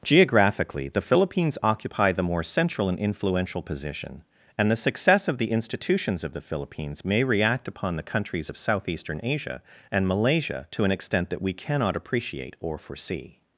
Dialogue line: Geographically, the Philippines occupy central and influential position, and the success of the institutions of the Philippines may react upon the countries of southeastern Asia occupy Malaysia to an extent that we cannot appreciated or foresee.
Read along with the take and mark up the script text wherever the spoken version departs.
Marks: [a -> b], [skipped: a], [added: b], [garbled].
Geographically, the Philippines occupy [added: the more] central and influential position, and the success of the institutions of the Philippines may react upon the countries of southeastern Asia [occupy -> and] Malaysia to an extent that we cannot [appreciated -> appreciate] or foresee.